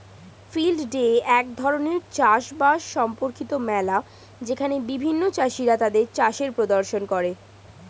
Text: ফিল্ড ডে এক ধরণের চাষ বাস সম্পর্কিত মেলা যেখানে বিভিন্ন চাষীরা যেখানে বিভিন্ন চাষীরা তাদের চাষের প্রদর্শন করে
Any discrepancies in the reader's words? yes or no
yes